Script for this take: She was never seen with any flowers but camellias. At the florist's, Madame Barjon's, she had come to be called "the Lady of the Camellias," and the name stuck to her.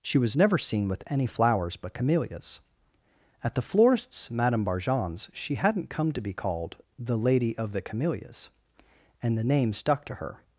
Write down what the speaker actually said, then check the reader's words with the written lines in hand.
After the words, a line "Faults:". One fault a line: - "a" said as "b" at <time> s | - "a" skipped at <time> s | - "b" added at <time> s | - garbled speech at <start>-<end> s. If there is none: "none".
She was never seen with any flowers but camellias. At the florist's, Madame Barjon's, she hadn't come to be called "the Lady of the Camellias," and the name stuck to her.
Faults:
- "had" said as "hadn't" at 5.6 s